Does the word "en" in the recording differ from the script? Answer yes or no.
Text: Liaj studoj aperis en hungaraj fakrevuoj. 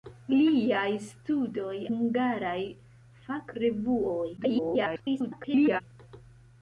yes